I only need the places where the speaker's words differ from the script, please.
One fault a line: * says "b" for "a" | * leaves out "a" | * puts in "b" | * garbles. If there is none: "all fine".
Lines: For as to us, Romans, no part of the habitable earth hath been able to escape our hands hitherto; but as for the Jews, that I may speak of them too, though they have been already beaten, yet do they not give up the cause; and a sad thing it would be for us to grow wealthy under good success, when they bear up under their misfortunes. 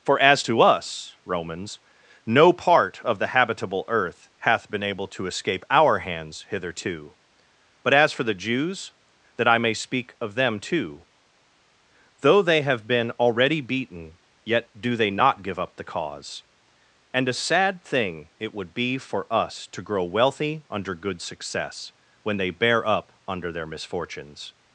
all fine